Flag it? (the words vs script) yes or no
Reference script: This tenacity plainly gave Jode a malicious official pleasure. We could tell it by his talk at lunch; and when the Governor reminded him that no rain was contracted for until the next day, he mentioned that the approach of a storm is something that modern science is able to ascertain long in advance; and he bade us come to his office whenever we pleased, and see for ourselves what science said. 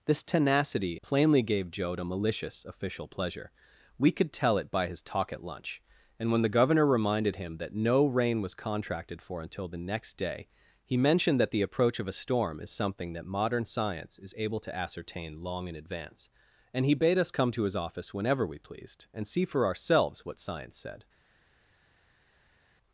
no